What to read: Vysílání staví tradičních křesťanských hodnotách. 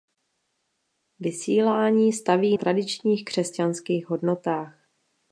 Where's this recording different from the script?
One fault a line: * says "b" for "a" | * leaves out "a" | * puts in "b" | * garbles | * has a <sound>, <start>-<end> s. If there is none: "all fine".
all fine